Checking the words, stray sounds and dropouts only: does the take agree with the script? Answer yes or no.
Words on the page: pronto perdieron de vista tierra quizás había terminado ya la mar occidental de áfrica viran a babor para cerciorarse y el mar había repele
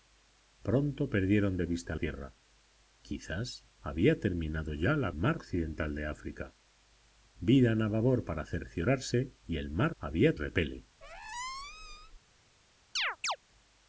no